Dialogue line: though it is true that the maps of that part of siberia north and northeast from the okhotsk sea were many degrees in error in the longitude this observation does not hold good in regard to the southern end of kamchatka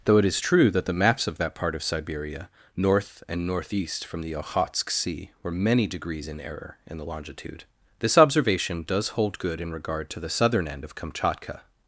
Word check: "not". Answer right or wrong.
wrong